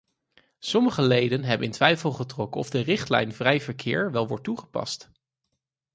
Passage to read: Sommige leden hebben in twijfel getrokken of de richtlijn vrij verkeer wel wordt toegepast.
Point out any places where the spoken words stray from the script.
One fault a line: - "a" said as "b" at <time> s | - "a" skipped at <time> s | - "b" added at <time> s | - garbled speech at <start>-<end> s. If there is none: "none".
none